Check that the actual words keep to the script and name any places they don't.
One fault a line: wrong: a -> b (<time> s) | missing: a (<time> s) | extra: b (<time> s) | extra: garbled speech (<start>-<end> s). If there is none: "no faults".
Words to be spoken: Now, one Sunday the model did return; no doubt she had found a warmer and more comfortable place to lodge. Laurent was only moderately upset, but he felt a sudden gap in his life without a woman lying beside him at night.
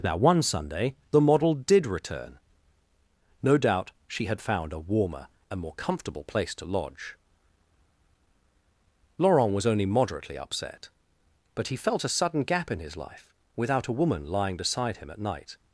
no faults